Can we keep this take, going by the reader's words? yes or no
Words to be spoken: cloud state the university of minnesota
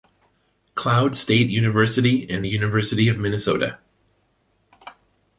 no